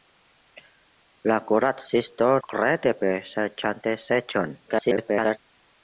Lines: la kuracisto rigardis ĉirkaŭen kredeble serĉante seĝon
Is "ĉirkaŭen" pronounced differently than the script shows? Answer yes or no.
yes